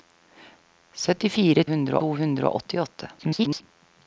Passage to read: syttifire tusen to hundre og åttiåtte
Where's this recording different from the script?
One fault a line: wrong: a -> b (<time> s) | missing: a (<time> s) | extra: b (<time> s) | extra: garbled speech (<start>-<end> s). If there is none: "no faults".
wrong: tusen -> hundre (1.7 s)
extra: garbled speech (3.2-3.6 s)